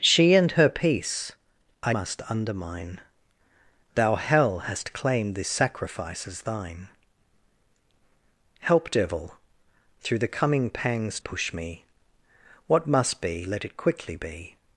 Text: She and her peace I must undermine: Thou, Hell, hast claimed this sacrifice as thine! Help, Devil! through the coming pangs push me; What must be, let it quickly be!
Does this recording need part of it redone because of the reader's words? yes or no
no